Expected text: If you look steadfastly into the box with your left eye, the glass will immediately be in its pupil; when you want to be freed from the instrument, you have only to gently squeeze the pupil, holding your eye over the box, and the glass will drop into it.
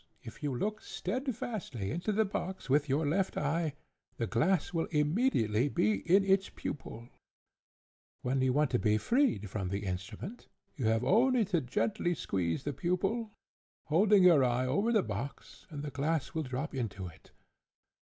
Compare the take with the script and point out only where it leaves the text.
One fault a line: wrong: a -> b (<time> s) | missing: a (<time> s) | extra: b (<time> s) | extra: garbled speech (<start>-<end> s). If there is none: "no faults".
no faults